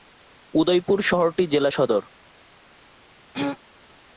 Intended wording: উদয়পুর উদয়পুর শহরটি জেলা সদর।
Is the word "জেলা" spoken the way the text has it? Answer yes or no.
yes